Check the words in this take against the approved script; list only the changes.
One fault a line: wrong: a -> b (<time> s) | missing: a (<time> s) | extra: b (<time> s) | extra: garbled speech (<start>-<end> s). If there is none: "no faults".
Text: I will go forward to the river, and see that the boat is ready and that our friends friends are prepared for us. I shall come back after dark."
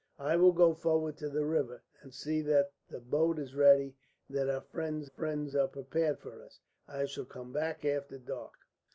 no faults